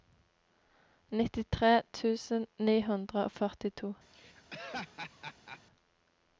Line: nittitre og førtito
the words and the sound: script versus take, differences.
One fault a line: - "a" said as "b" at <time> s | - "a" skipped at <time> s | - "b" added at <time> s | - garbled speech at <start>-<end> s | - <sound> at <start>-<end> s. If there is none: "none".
- "tusen ni hundre" added at 2.0 s
- laugh at 4.1-5.6 s